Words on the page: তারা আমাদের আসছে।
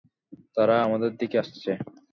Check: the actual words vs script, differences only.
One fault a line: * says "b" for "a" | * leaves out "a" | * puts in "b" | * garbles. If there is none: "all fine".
* puts in "দিকে"